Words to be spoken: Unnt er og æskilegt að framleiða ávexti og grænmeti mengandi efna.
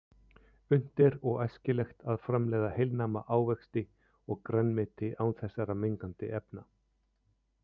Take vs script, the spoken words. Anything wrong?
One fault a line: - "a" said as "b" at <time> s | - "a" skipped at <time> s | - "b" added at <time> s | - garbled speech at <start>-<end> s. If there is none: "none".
- "heilnæma" added at 2.8 s
- "án þessara" added at 5.3 s